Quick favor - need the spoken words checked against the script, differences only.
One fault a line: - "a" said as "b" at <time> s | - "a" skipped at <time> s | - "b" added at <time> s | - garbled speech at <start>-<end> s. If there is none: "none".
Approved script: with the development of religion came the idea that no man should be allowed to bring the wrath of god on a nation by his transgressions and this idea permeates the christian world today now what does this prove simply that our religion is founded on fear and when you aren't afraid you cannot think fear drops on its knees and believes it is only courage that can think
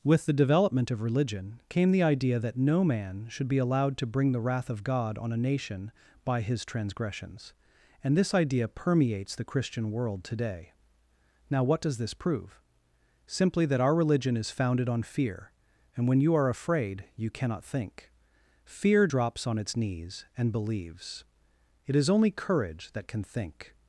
- "aren't" said as "are" at 16.3 s